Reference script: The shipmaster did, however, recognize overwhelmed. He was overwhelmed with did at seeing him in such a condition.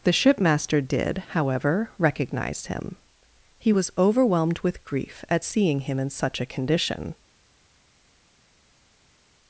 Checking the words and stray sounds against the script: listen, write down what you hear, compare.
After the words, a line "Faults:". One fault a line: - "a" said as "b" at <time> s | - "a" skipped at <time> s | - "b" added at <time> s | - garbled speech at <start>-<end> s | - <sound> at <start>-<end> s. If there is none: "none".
The shipmaster did, however, recognize him. He was overwhelmed with grief at seeing him in such a condition.
Faults:
- "overwhelmed" said as "him" at 2.6 s
- "did" said as "grief" at 4.8 s